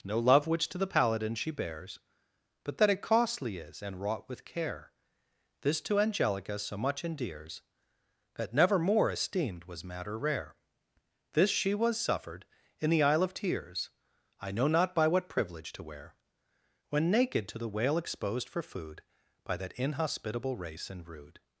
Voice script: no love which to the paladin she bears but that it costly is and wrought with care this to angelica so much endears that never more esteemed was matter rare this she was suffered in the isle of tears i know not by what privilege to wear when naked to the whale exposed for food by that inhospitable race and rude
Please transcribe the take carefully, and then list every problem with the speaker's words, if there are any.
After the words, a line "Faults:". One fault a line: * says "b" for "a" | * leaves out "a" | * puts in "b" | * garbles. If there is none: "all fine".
no love which to the paladin she bears but that it costly is and wrought with care this to angelica so much endears that never more esteemed was matter rare this she was suffered in the isle of tears i know not by what privilege to wear when naked to the whale exposed for food by that inhospitable race and rude
Faults:
all fine